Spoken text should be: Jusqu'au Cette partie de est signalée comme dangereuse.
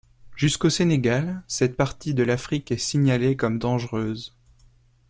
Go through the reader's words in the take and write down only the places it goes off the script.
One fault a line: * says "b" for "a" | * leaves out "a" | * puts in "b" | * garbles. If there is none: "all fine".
* puts in "Sénégal"
* puts in "l'Afrique"